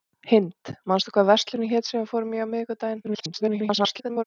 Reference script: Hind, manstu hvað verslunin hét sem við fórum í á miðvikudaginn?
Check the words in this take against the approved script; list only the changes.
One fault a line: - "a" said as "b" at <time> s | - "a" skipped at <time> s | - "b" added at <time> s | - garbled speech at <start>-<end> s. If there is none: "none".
- garbled speech at 3.0-4.2 s